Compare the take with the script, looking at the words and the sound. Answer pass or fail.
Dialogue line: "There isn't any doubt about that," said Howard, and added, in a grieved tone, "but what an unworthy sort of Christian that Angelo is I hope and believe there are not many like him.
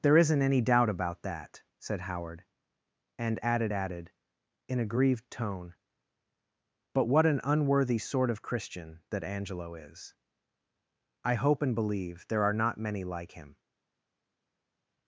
fail